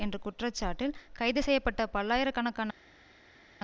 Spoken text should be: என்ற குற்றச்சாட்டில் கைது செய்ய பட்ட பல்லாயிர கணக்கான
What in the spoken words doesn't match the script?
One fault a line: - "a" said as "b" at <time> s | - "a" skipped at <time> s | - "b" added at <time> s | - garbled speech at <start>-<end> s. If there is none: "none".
none